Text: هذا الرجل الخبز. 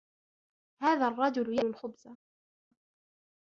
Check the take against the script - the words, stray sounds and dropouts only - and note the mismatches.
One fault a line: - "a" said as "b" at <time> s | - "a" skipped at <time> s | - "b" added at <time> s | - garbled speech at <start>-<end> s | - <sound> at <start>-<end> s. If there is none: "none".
none